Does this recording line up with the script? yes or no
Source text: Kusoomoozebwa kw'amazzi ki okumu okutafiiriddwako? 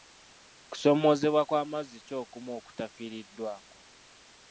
yes